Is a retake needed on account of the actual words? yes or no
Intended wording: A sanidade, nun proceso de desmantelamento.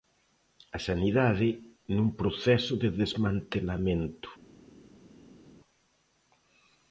no